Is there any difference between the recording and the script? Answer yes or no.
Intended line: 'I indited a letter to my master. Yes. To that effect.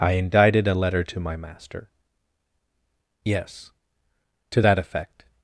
no